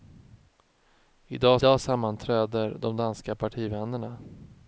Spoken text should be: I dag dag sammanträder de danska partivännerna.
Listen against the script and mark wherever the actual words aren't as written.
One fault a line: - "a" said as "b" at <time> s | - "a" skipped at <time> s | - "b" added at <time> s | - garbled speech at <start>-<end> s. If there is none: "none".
none